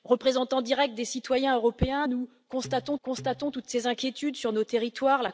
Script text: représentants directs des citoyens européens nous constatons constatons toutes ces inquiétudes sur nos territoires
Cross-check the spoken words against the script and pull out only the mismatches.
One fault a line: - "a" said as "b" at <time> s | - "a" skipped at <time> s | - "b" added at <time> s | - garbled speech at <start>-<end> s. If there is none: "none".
none